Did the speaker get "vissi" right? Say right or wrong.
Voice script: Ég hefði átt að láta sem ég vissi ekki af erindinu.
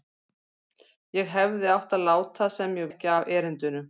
wrong